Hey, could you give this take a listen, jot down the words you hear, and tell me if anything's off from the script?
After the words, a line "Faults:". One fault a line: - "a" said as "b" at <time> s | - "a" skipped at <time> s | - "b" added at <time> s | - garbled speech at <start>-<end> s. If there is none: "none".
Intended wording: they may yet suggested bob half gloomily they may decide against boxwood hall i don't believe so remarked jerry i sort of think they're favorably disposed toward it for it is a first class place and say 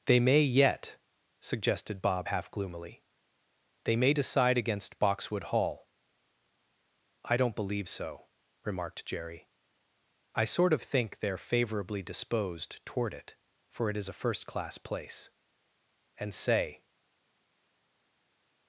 they may yet suggested bob half gloomily they may decide against boxwood hall i don't believe so remarked jerry i sort of think they're favorably disposed toward it for it is a first class place and say
Faults:
none